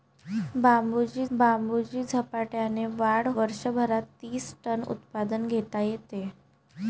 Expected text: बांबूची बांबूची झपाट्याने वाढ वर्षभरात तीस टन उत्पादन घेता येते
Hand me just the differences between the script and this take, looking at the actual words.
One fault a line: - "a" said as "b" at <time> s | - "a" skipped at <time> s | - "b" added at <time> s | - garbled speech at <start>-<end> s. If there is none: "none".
none